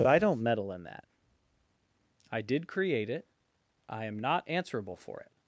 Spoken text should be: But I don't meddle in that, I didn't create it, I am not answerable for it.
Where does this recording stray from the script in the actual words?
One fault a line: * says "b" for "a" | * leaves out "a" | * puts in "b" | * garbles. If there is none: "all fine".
* says "did" for "didn't"